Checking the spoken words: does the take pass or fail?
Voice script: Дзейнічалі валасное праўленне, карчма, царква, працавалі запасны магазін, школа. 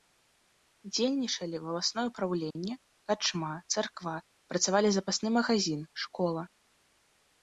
pass